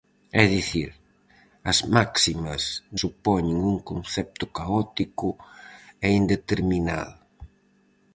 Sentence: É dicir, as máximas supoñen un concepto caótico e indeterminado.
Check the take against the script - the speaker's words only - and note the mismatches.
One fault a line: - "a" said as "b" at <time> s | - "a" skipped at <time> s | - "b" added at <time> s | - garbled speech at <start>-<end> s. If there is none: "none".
none